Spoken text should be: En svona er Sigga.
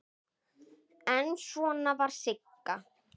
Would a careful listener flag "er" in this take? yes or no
yes